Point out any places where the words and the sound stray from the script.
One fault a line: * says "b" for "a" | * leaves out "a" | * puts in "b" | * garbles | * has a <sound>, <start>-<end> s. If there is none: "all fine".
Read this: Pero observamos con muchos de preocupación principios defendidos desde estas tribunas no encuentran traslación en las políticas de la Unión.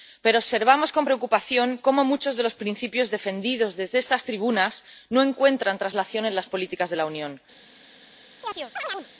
* puts in "preocupación cómo"
* says "los" for "preocupación"
* has a chirp, 8.4-9.1 s